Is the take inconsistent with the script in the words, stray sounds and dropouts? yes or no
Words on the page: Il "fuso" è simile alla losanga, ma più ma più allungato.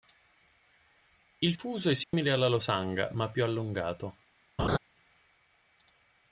yes